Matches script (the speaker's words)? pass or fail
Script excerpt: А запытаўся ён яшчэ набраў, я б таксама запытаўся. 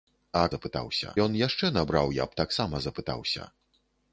pass